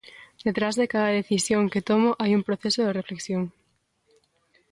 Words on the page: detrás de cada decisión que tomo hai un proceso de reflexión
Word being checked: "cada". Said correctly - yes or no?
yes